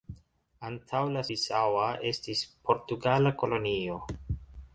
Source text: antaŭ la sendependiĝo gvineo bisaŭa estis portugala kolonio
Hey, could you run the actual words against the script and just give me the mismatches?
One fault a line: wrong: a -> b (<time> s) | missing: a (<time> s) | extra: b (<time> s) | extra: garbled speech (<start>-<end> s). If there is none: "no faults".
missing: sendependiĝo gvineo (1.2 s)